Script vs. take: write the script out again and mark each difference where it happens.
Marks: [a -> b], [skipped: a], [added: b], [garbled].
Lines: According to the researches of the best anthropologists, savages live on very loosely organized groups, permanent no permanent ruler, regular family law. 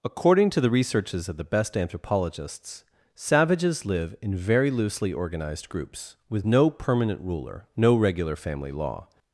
According to the researches of the best anthropologists, savages live [on -> in] very loosely organized groups, [permanent -> with] no permanent ruler, [added: no] regular family law.